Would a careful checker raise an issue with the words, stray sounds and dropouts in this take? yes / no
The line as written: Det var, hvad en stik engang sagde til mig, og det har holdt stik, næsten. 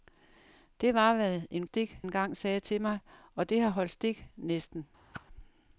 yes